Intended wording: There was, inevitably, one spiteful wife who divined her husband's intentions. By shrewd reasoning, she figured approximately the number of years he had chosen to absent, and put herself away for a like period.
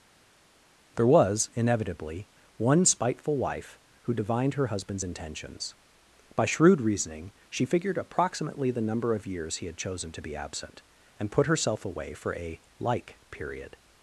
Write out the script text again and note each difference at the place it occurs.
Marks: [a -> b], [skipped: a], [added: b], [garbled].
There was, inevitably, one spiteful wife who divined her husband's intentions. By shrewd reasoning, she figured approximately the number of years he had chosen to [added: be] absent, and put herself away for a like period.